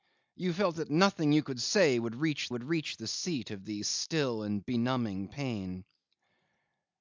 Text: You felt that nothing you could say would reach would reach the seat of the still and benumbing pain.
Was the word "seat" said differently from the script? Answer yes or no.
no